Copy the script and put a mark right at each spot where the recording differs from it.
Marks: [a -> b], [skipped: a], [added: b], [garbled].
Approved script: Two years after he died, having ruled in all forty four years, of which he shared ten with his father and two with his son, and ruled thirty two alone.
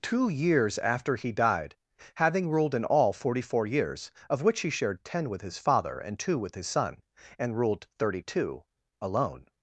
Two years after he died, having ruled in all forty four years, of which he shared ten with his father and two with his son, and ruled thirty two alone.